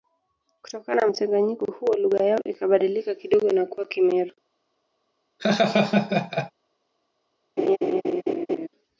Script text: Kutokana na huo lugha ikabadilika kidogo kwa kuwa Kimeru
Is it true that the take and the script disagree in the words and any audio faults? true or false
true